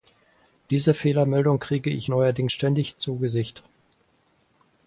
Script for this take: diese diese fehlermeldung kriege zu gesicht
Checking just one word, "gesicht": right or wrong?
right